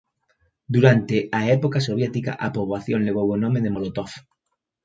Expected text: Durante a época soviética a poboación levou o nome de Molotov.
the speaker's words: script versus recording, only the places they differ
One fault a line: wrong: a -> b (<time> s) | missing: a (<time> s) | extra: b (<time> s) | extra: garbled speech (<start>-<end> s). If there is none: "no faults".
no faults